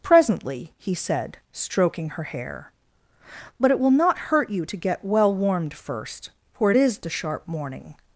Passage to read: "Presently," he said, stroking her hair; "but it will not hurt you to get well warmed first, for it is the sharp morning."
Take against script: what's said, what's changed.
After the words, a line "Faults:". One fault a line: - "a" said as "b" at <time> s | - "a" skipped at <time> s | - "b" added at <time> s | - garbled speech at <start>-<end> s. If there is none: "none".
"Presently," he said, stroking her hair; "but it will not hurt you to get well warmed first, for it is the sharp morning."
Faults:
none